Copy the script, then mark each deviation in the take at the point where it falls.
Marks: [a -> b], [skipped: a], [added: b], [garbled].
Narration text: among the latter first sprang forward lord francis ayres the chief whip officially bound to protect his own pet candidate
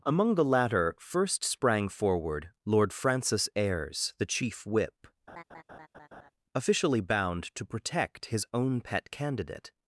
among the latter first sprang forward lord francis ayres the chief whip officially bound to protect his own pet candidate